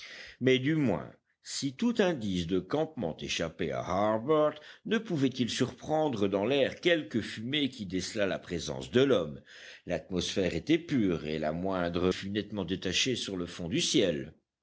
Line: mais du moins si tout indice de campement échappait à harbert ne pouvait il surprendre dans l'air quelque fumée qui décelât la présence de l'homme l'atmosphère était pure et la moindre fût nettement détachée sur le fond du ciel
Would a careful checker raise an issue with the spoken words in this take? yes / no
no